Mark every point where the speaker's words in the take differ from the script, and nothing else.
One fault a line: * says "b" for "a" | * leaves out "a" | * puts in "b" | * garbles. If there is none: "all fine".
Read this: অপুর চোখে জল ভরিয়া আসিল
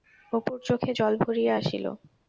all fine